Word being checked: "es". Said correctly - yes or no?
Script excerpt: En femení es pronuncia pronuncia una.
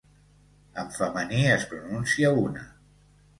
yes